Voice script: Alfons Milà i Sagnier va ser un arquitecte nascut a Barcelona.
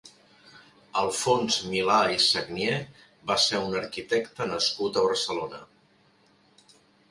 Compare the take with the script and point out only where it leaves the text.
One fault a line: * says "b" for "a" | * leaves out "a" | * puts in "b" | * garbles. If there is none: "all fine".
all fine